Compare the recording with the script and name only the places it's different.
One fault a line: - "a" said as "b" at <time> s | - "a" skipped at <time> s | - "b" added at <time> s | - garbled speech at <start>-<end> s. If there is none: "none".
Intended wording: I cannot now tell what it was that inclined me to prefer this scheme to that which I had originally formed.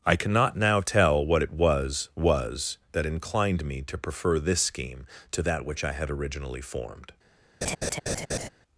- "was" added at 2.1 s